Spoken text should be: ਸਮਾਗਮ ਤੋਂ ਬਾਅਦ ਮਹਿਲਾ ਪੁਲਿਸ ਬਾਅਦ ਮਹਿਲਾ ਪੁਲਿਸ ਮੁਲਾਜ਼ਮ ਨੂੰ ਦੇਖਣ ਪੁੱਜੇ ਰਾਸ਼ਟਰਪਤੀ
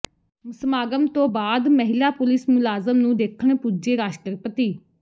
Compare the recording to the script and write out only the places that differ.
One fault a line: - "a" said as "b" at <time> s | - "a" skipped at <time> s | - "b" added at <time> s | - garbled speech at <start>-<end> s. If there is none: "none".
- "ਬਾਅਦ ਮਹਿਲਾ ਪੁਲਿਸ" skipped at 2.5 s